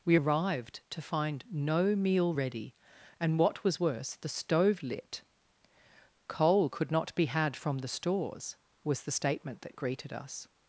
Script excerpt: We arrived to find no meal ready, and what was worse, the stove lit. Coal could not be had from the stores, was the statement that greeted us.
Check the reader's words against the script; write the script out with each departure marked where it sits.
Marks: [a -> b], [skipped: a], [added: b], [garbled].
We arrived to find no meal ready, and what was worse, the stove lit. Coal could not be had from the stores, was the statement that greeted us.